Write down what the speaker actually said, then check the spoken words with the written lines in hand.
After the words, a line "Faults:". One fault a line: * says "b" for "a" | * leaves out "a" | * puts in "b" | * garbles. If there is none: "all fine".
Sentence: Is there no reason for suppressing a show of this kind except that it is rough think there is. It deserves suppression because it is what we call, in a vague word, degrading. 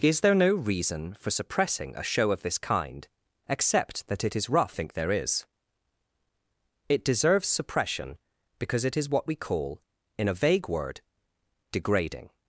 Is there no reason for suppressing a show of this kind except that it is rough think there is. It deserves suppression because it is what we call, in a vague word, degrading.
Faults:
all fine